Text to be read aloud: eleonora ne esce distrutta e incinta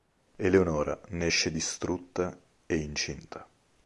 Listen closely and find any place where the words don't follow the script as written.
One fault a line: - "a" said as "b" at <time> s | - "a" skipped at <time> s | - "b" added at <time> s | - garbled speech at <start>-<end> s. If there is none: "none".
none